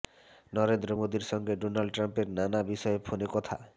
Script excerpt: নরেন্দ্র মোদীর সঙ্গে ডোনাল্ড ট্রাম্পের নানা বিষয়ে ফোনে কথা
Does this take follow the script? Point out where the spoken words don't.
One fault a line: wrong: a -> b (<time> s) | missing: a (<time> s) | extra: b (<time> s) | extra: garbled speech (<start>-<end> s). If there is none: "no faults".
no faults